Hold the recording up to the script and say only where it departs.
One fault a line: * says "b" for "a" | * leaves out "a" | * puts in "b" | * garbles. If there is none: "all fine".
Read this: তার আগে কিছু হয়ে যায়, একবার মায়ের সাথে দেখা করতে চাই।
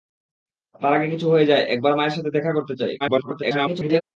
* garbles